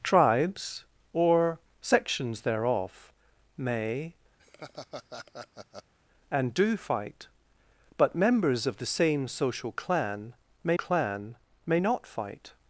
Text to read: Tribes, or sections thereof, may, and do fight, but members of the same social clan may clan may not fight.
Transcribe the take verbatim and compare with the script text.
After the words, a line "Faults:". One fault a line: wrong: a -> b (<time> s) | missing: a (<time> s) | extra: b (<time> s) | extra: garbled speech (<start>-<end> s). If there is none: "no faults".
Tribes, or sections thereof, may, and do fight, but members of the same social clan may clan may not fight.
Faults:
no faults